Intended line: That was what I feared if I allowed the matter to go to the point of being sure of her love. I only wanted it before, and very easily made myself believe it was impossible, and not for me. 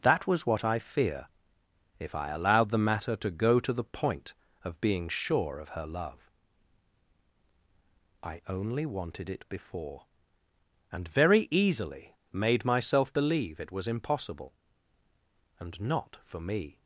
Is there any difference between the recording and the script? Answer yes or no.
yes